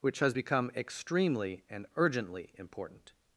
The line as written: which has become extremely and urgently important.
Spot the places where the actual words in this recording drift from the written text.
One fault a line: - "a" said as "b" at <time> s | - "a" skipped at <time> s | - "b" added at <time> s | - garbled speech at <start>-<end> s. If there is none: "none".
none